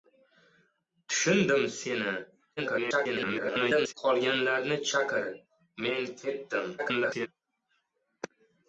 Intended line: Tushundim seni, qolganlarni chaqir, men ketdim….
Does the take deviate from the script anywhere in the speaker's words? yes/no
yes